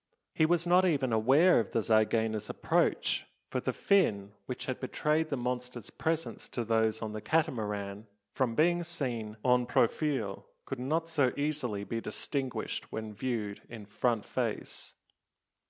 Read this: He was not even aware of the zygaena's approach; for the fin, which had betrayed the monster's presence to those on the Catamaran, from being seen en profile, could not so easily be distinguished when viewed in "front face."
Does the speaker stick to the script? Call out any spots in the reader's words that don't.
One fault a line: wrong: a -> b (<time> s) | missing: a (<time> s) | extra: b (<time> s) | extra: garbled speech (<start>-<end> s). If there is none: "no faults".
no faults